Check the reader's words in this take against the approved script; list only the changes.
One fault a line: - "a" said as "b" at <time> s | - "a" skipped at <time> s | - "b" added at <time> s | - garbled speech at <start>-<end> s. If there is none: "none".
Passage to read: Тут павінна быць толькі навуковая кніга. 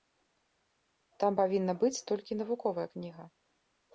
- "Тут" said as "Там" at 1.2 s